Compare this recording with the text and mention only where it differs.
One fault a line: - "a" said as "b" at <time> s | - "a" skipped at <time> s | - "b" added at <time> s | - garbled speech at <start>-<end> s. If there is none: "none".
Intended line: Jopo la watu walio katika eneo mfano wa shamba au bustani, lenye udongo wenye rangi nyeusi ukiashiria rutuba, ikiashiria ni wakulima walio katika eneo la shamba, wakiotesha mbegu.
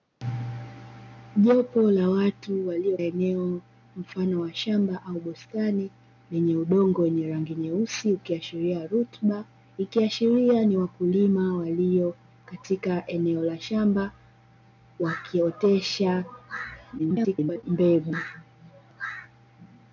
- "katika" skipped at 3.0 s
- garbled speech at 17.0-17.6 s